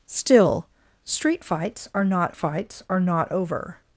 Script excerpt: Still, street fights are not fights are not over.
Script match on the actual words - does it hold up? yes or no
yes